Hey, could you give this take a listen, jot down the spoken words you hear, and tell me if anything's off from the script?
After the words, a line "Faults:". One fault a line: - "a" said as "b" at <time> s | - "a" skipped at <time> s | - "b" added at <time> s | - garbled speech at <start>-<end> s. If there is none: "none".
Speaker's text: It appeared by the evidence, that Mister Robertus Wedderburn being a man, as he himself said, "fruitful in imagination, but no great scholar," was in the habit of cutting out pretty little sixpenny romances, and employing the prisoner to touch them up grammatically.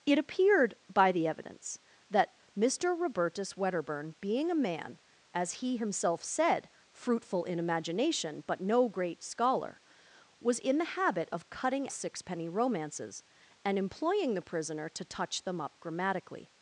It appeared by the evidence, that Mister Robertus Wedderburn being a man, as he himself said, "fruitful in imagination, but no great scholar," was in the habit of cutting sixpenny romances, and employing the prisoner to touch them up grammatically.
Faults:
- "out pretty little" skipped at 11.9 s